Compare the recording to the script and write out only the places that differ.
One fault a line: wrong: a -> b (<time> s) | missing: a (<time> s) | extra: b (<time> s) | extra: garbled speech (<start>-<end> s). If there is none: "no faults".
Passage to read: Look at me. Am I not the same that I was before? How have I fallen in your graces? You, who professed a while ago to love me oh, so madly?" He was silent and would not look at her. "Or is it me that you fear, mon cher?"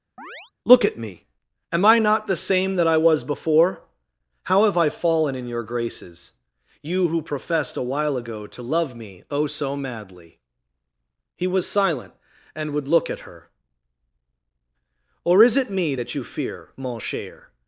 missing: not (12.9 s)